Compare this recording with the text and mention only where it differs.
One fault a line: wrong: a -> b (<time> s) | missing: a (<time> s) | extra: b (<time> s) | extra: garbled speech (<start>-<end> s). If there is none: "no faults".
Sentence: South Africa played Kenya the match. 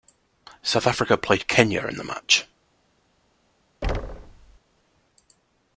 extra: in (1.9 s)